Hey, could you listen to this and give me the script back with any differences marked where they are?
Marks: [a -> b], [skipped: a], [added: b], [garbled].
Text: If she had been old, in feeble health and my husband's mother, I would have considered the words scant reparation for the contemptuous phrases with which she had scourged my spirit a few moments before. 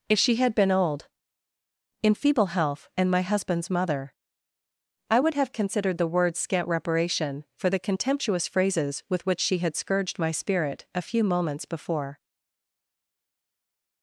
If she had been old, in feeble health and my husband's mother, I would have considered the words scant reparation for the contemptuous phrases with which she had scourged my spirit a few moments before.